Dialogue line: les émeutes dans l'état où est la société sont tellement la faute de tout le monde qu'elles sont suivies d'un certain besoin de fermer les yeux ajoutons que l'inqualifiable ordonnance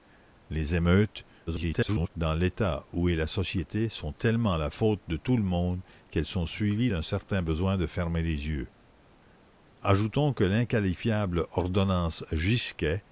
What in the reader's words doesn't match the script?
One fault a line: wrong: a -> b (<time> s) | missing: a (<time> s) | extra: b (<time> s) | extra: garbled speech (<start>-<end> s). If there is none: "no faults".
extra: garbled speech (1.5-2.1 s)